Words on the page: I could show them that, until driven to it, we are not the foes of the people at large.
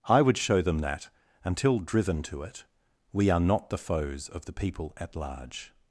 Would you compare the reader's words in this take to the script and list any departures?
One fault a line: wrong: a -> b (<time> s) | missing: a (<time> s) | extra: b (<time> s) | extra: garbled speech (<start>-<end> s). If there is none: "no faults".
wrong: could -> would (0.2 s)